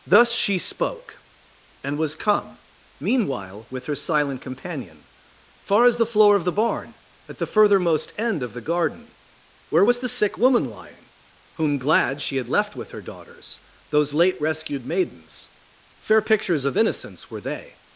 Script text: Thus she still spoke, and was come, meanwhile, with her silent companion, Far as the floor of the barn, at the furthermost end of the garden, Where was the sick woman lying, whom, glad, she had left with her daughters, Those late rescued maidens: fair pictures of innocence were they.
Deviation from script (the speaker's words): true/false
true